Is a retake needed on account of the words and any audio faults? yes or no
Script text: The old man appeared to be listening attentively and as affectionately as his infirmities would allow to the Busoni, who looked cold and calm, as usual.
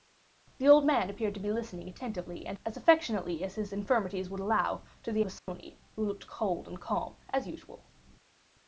yes